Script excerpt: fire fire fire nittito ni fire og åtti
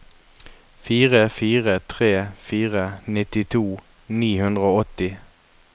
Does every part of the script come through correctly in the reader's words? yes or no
no